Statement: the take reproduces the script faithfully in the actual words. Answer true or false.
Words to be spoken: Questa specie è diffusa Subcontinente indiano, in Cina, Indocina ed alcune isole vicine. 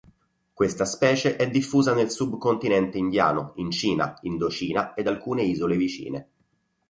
false